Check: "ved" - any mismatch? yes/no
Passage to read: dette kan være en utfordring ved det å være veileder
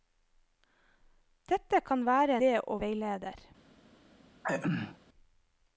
yes